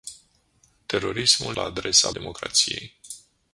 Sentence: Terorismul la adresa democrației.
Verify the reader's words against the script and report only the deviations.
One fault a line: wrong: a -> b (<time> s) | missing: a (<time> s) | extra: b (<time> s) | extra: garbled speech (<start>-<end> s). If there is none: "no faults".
no faults